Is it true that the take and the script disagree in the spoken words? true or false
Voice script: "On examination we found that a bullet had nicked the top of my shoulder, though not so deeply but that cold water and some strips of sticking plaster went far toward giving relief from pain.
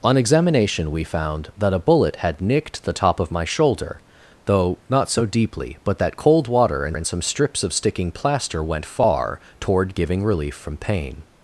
true